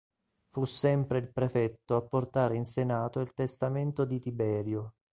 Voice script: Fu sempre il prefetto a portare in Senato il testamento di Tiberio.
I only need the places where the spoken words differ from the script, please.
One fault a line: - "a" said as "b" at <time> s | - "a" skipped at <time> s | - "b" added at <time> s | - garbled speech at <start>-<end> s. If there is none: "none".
none